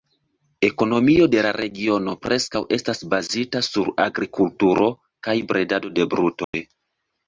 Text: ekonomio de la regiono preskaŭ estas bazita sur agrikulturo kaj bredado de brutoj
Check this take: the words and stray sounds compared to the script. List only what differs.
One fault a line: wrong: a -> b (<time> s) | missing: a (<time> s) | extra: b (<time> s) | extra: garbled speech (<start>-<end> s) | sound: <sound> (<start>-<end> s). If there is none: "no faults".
sound: dropout (6.4-6.5 s)